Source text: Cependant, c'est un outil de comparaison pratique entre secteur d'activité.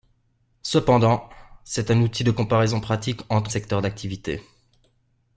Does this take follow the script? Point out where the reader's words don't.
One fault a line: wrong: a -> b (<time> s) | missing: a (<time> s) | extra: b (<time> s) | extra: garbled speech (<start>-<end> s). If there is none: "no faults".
no faults